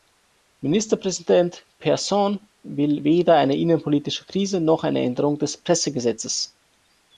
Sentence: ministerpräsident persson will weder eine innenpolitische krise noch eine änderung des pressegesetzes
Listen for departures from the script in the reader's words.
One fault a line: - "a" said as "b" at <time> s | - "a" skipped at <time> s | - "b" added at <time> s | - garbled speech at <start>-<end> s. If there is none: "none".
none